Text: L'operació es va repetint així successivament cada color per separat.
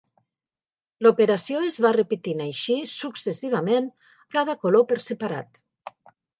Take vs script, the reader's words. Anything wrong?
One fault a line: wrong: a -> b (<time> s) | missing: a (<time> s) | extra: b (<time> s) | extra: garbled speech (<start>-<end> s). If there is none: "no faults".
no faults